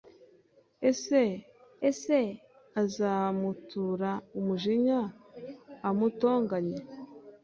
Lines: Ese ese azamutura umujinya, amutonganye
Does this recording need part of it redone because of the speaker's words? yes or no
no